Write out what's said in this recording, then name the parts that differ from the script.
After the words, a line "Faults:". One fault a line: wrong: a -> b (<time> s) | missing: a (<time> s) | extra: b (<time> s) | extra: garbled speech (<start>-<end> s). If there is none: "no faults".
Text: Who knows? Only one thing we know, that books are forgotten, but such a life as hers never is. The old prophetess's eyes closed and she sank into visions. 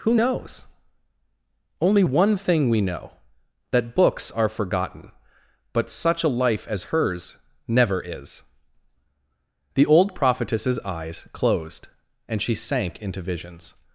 Who knows? Only one thing we know, that books are forgotten, but such a life as hers never is. The old prophetess's eyes closed and she sank into visions.
Faults:
no faults